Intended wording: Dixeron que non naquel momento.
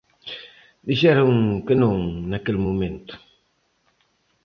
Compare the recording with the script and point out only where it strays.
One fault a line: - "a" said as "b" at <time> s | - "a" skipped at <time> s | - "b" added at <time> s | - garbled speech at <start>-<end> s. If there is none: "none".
none